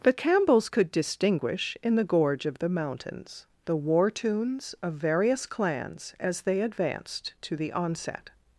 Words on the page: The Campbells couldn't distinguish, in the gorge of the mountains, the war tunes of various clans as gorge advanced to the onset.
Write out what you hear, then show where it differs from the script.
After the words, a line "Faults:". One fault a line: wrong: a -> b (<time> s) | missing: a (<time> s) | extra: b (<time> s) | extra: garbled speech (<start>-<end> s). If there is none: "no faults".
The Campbells could distinguish, in the gorge of the mountains, the war tunes of various clans as they advanced to the onset.
Faults:
wrong: couldn't -> could (0.7 s)
wrong: gorge -> they (6.4 s)